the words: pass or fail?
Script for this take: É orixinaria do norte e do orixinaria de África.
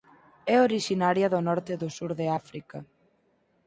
fail